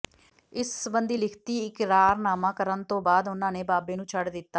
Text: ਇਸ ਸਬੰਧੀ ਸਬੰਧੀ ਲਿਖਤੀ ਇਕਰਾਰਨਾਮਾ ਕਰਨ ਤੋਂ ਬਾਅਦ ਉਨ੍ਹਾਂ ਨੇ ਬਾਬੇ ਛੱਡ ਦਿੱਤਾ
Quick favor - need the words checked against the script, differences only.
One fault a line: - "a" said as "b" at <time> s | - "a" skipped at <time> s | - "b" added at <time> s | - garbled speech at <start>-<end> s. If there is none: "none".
- "ਸਬੰਧੀ" skipped at 1.2 s
- "ਨੂੰ" added at 3.9 s